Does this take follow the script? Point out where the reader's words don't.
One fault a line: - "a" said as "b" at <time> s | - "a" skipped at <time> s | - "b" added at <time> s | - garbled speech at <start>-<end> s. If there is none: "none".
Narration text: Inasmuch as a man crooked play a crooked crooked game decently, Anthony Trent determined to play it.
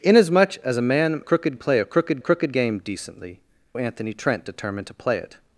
none